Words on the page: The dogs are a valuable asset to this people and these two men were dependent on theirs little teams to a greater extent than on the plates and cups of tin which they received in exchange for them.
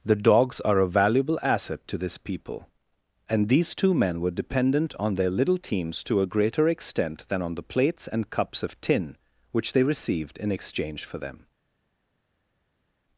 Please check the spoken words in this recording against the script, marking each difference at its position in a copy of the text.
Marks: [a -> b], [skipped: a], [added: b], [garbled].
The dogs are a valuable asset to this people and these two men were dependent on [theirs -> their] little teams to a greater extent than on the plates and cups of tin which they received in exchange for them.